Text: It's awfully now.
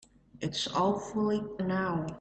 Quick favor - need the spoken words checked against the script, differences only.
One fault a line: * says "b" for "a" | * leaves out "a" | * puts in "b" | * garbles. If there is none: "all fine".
all fine